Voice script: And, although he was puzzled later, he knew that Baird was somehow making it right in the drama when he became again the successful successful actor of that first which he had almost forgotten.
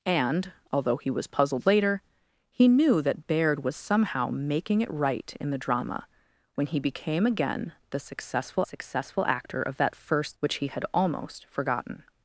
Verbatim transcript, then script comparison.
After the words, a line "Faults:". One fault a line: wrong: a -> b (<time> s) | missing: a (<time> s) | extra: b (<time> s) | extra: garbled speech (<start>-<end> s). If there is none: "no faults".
And, although he was puzzled later, he knew that Baird was somehow making it right in the drama when he became again the successful successful actor of that first which he had almost forgotten.
Faults:
no faults